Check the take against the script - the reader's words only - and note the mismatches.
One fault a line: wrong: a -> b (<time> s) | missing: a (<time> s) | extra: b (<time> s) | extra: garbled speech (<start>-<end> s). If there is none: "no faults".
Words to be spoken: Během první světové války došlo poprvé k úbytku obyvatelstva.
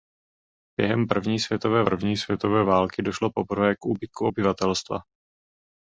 extra: první světové (1.8 s)